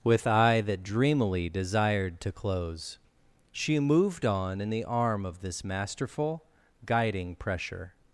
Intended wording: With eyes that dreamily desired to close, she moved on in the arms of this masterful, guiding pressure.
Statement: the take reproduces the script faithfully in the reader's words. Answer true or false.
false